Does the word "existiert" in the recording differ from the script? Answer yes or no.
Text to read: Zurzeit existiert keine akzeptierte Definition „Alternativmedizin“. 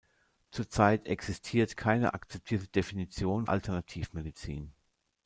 no